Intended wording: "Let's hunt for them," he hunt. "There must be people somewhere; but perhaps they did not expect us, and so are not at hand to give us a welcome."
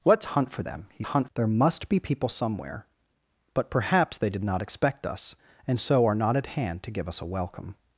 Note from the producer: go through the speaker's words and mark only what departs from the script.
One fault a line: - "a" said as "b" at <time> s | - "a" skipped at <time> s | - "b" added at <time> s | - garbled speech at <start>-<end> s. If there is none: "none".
none